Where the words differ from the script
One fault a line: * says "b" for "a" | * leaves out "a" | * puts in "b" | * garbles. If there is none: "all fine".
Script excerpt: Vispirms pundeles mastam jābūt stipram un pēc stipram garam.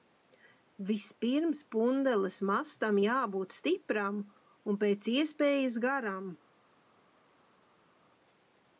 * says "iespējas" for "stipram"